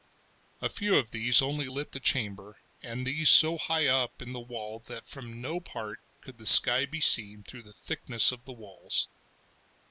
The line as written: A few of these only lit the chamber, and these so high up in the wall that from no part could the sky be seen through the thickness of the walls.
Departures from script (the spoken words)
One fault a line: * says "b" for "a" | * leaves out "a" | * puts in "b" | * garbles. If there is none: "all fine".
all fine